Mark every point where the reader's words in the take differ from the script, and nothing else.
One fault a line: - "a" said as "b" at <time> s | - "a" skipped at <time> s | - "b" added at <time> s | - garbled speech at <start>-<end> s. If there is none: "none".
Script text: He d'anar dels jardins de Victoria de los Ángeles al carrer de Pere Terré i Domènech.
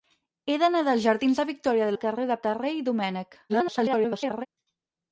- "los Ángeles" skipped at 1.9 s
- "Pere" skipped at 2.4 s
- garbled speech at 3.5-4.5 s